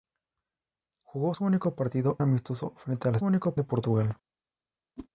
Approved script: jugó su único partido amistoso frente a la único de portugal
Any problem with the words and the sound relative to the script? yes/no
yes